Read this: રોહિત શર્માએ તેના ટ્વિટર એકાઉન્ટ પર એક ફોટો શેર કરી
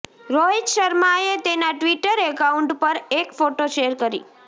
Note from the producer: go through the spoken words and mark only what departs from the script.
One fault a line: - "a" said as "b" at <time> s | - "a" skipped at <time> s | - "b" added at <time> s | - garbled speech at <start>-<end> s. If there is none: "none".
none